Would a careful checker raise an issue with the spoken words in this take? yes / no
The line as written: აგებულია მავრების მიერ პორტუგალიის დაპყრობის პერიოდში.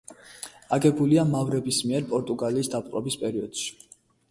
no